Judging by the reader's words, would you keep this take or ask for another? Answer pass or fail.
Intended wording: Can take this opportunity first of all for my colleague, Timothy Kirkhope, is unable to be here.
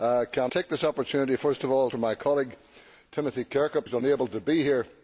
pass